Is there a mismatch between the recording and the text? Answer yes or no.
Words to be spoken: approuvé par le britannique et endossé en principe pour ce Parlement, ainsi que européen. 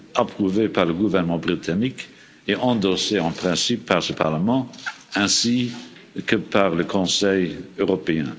yes